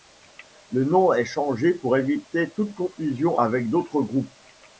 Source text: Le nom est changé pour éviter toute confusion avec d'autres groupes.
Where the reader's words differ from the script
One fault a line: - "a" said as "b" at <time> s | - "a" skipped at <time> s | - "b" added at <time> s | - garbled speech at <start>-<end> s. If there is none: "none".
none